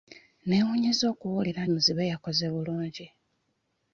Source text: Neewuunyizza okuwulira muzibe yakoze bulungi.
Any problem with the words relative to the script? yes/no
no